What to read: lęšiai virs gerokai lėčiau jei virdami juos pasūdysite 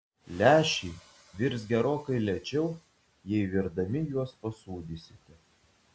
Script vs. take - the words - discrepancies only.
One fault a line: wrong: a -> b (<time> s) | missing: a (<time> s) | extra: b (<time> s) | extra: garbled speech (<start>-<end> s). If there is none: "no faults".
no faults